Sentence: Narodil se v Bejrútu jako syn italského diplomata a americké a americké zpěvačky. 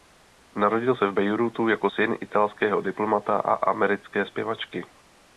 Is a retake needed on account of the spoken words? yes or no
yes